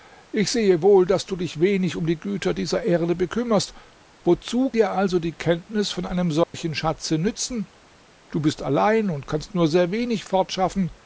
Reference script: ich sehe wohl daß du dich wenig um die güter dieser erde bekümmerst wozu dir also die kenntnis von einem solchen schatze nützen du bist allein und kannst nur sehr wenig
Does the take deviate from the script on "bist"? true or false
false